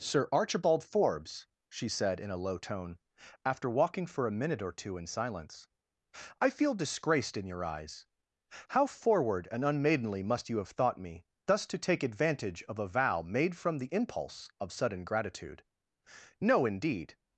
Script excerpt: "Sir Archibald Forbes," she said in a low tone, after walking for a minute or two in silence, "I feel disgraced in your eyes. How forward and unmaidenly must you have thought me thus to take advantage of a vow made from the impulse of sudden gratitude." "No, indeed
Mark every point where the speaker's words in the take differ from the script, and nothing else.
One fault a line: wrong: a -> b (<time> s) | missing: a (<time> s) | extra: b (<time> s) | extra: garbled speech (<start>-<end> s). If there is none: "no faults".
no faults